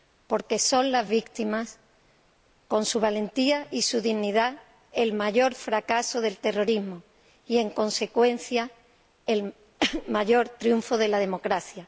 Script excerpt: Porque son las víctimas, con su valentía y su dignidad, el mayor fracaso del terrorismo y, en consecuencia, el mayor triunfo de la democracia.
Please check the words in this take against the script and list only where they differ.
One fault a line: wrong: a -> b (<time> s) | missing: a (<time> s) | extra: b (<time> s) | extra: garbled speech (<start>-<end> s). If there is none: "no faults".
no faults